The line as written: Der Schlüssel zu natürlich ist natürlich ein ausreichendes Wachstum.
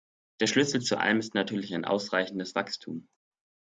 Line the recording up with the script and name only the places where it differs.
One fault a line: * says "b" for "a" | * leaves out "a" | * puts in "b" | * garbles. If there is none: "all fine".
* says "allem" for "natürlich"